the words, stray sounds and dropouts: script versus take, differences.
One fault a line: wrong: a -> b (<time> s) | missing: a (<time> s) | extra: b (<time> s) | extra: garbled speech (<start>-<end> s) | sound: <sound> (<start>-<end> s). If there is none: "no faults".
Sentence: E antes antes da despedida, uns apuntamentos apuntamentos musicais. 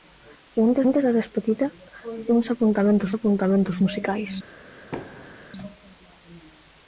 sound: thud (4.9-5.5 s)